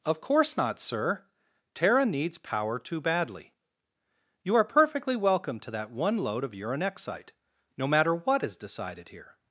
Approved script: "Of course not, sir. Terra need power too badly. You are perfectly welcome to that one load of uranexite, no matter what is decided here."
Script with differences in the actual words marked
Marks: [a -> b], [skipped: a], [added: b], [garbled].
"Of course not, sir. Terra [need -> needs] power too badly. You are perfectly welcome to that one load of uranexite, no matter what is decided here."